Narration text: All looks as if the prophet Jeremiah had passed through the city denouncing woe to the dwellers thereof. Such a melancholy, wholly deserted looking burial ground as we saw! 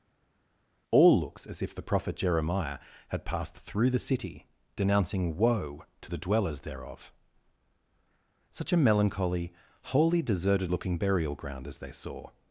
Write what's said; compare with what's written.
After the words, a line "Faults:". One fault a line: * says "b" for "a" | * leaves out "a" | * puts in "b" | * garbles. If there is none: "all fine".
All looks as if the prophet Jeremiah had passed through the city denouncing woe to the dwellers thereof. Such a melancholy, wholly deserted looking burial ground as they saw!
Faults:
* says "they" for "we"